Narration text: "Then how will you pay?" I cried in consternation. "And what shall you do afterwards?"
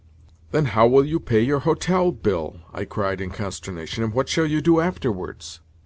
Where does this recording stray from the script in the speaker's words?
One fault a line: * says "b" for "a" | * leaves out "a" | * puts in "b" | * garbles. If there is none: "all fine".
* puts in "your hotel bill"